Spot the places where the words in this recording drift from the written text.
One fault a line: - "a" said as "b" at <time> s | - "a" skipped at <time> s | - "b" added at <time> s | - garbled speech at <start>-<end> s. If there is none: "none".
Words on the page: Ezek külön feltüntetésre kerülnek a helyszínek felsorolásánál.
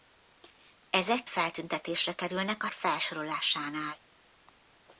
- "külön" skipped at 1.2 s
- "helyszínek" skipped at 2.7 s